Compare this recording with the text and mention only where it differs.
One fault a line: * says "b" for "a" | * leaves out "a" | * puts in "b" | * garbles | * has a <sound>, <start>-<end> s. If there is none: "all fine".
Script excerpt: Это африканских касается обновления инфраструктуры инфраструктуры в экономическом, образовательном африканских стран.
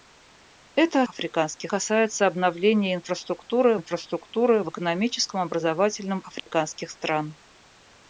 * has a dropout, 6.4-6.5 s